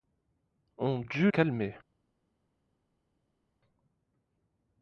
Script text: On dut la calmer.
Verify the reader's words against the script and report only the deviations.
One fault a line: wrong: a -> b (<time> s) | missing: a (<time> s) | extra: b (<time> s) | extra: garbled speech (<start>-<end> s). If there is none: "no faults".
missing: la (1.3 s)